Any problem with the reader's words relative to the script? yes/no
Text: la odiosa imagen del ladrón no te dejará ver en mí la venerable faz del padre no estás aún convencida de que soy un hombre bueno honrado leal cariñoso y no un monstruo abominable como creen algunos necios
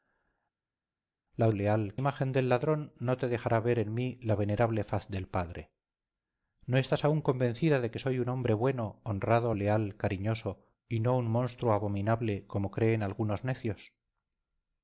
yes